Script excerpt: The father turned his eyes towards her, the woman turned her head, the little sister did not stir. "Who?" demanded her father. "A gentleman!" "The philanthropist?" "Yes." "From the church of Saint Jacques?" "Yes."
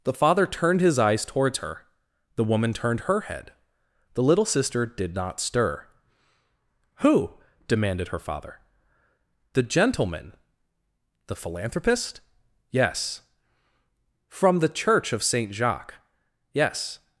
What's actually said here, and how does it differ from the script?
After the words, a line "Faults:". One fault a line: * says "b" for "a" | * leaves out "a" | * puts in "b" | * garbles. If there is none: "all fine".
The father turned his eyes towards her, the woman turned her head, the little sister did not stir. "Who?" demanded her father. "The gentleman!" "The philanthropist?" "Yes." "From the church of Saint Jacques?" "Yes."
Faults:
* says "The" for "A"